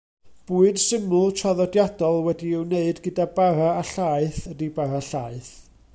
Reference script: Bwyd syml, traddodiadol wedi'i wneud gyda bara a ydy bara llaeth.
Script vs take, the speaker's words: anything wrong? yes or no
yes